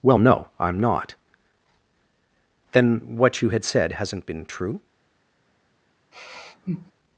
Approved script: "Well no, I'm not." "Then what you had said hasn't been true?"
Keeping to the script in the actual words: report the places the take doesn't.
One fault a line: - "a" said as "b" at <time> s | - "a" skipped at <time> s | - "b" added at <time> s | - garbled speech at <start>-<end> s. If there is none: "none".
none